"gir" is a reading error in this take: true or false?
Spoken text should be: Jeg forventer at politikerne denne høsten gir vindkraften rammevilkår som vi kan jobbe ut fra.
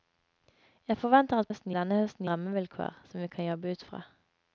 true